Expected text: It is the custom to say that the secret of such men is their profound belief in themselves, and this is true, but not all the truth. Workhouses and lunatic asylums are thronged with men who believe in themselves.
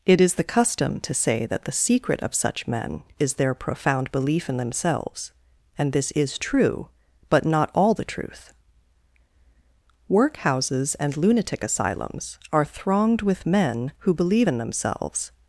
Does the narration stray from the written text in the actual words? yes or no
no